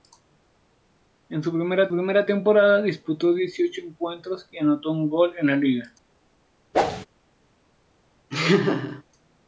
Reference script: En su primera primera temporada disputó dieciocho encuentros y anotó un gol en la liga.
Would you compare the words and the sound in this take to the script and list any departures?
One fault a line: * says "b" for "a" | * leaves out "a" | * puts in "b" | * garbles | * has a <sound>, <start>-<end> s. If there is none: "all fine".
* has a whoosh, 6.7-7.1 s
* has a laugh, 8.3-9.0 s